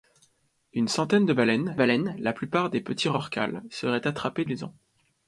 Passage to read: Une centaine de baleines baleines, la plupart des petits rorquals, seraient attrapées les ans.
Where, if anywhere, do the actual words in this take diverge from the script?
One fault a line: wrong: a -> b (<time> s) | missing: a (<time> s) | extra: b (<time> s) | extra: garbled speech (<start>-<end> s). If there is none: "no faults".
no faults